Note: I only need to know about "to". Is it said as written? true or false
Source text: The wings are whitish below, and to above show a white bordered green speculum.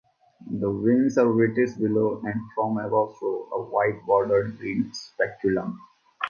false